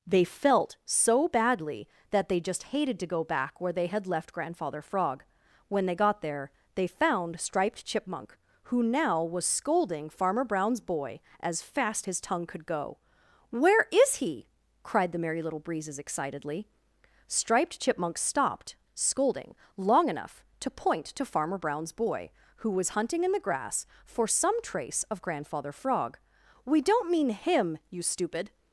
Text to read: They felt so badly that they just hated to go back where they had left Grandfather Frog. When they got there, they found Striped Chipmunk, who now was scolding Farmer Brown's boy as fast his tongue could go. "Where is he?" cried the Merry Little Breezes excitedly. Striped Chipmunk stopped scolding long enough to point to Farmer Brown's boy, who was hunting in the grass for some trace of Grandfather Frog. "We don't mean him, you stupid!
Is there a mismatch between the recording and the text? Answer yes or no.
no